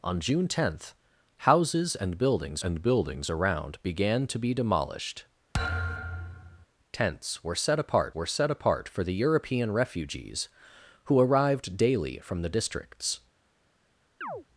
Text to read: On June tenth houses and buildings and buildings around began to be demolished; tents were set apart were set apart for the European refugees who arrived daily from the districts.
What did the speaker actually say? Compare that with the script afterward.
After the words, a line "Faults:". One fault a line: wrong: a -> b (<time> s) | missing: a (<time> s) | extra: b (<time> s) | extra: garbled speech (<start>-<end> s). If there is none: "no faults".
On June tenth houses and buildings and buildings around began to be demolished; tents were set apart were set apart for the European refugees who arrived daily from the districts.
Faults:
no faults